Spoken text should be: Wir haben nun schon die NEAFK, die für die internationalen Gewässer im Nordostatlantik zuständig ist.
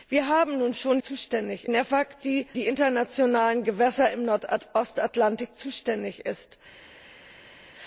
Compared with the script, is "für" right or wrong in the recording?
wrong